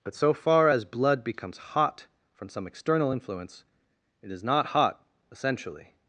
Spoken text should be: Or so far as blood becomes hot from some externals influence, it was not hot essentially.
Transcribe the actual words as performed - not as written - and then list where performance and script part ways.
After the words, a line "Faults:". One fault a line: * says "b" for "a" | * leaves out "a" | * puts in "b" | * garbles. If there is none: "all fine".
But so far as blood becomes hot from some external influence, it is not hot essentially.
Faults:
* says "But" for "Or"
* says "external" for "externals"
* says "is" for "was"